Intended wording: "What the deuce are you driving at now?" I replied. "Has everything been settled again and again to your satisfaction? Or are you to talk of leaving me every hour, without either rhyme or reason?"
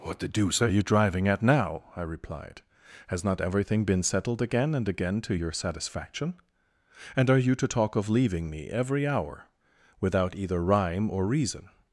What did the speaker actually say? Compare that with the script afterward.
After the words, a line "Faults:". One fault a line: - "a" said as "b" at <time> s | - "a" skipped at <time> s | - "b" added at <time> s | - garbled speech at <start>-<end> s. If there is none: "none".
"What the deuce are you driving at now?" I replied. "Has not everything been settled again and again to your satisfaction? And are you to talk of leaving me every hour, without either rhyme or reason?"
Faults:
- "not" added at 3.2 s
- "Or" said as "And" at 7.1 s